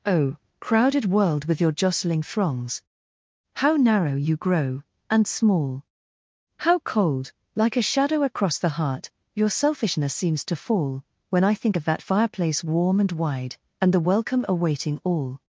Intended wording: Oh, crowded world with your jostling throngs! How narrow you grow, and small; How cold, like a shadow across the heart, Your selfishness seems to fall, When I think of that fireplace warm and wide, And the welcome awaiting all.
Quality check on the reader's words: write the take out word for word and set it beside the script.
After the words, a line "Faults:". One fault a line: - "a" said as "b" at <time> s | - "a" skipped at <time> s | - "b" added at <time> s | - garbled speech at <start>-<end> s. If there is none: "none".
Oh, crowded world with your jostling throngs! How narrow you grow, and small; How cold, like a shadow across the heart, Your selfishness seems to fall, When I think of that fireplace warm and wide, And the welcome awaiting all.
Faults:
none